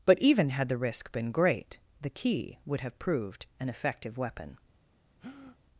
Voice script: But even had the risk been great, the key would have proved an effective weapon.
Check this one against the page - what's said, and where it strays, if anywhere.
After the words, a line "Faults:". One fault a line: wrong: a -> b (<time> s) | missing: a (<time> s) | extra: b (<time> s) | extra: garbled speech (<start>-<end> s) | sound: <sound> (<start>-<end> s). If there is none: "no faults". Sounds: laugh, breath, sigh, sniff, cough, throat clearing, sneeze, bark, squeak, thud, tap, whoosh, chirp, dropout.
But even had the risk been great, the key would have proved an effective weapon.
Faults:
sound: breath (5.2-5.6 s)